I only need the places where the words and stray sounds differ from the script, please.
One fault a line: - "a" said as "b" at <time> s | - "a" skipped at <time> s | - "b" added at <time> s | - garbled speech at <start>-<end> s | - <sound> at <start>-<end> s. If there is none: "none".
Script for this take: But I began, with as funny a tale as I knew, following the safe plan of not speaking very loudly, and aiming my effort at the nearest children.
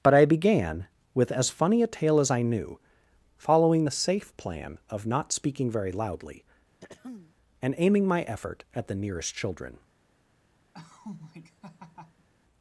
- throat clearing at 6.8-7.4 s
- laugh at 10.7-12.3 s